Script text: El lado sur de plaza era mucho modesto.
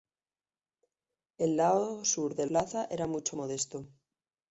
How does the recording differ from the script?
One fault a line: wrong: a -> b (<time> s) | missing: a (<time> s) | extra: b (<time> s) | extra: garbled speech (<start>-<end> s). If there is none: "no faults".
no faults